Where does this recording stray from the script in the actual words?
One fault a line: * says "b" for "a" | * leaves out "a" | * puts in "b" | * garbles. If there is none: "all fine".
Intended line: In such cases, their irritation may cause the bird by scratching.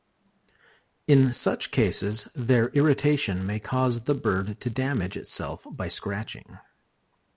* puts in "to damage itself"